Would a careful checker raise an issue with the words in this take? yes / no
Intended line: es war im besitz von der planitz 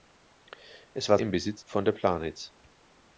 no